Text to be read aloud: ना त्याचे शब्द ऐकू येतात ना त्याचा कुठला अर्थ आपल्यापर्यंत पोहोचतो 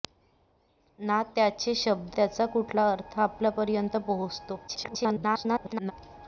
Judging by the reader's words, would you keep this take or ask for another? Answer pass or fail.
fail